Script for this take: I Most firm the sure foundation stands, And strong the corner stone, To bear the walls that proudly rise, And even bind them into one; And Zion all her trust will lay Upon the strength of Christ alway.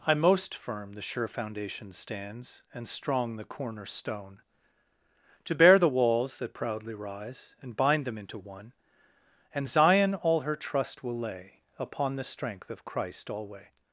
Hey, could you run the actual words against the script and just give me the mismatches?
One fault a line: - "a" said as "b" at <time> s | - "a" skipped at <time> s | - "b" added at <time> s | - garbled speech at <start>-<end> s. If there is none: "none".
- "even" skipped at 7.8 s